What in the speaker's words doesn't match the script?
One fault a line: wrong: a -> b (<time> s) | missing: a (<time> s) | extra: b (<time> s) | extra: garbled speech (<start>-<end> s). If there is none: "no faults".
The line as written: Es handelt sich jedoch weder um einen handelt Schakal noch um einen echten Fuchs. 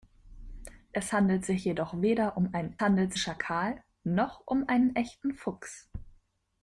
no faults